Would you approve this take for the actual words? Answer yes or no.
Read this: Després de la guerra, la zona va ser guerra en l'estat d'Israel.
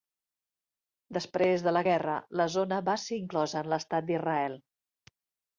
no